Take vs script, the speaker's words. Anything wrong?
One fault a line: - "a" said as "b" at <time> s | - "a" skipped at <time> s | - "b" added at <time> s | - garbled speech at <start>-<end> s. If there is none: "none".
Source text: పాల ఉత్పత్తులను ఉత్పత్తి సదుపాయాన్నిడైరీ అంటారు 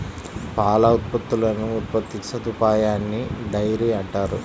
none